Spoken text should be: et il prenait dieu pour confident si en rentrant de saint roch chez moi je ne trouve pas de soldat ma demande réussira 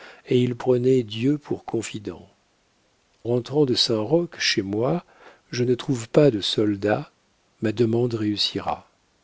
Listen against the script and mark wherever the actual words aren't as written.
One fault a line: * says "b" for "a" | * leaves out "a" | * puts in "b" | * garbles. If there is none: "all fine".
* leaves out "si en"